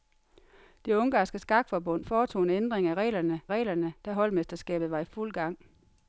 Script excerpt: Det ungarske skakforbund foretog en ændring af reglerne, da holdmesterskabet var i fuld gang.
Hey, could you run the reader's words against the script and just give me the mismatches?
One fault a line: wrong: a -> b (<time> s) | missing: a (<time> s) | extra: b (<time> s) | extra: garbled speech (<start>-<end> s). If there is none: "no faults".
extra: reglerne (3.5 s)